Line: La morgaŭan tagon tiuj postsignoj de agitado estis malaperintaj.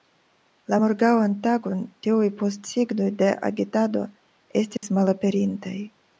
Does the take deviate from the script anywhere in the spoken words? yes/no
no